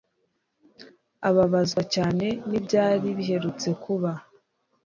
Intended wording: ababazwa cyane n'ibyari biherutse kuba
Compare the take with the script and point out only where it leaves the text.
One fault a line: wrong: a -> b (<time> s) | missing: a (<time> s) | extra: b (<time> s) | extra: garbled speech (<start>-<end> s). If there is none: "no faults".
no faults